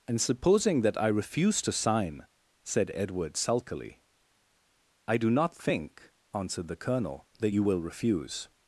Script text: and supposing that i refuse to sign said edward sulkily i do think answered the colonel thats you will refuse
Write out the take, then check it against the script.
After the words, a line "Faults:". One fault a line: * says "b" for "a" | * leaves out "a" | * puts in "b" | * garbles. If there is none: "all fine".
and supposing that i refuse to sign said edward sulkily i do not think answered the colonel that you will refuse
Faults:
* puts in "not"
* says "that" for "thats"